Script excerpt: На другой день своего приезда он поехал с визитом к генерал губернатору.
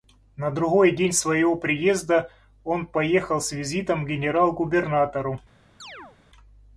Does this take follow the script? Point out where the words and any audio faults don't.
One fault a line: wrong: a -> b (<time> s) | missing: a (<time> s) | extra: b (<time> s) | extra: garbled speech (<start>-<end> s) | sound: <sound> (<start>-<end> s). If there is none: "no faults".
sound: chirp (5.8-6.2 s)